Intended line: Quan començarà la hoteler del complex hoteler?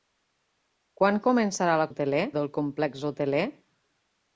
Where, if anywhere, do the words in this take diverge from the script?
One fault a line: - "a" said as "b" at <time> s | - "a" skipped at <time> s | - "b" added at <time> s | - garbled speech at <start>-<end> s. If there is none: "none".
none